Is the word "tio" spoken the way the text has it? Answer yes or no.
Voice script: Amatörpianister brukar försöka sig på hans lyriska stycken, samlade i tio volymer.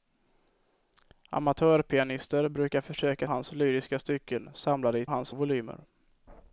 no